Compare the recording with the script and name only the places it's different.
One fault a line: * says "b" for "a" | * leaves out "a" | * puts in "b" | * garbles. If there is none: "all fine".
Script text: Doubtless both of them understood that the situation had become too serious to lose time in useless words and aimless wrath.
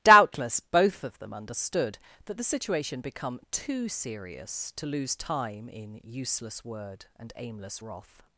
* leaves out "had"
* says "word" for "words"